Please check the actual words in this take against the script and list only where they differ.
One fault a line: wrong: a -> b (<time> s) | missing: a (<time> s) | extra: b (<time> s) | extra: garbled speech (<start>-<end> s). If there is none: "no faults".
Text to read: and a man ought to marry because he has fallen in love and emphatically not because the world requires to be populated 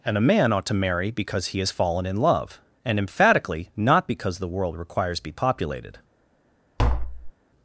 missing: to (5.2 s)